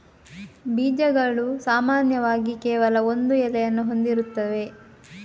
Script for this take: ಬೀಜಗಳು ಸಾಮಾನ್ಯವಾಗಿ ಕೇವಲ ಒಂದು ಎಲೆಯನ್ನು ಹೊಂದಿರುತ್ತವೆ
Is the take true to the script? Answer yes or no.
yes